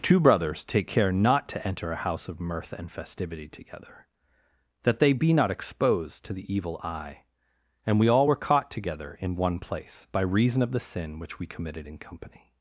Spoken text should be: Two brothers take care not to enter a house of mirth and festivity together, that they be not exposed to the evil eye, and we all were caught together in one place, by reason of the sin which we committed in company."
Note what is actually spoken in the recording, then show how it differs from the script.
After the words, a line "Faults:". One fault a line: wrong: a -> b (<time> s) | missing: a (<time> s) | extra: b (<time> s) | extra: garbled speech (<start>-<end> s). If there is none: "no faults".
Two brothers take care not to enter a house of mirth and festivity together, that they be not exposed to the evil eye, and we all were caught together in one place, by reason of the sin which we committed in company."
Faults:
no faults